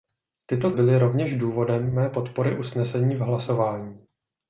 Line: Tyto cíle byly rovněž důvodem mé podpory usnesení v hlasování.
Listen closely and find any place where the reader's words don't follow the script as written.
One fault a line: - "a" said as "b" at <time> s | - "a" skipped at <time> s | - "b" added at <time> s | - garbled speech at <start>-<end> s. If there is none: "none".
- "cíle" skipped at 0.7 s